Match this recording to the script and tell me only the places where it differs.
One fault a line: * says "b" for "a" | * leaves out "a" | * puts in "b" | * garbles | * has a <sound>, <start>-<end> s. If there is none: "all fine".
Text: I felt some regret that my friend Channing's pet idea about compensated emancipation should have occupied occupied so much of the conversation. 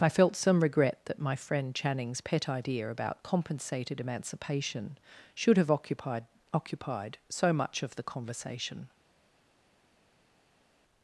all fine